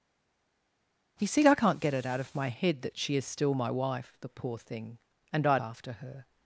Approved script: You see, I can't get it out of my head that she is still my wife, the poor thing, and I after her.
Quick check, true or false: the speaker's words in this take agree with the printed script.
true